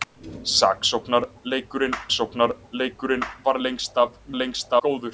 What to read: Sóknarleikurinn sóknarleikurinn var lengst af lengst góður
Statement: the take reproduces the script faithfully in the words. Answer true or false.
true